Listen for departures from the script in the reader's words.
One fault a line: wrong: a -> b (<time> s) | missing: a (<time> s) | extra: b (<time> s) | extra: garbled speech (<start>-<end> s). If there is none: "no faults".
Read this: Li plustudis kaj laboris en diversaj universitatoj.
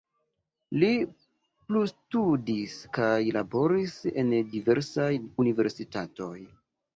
no faults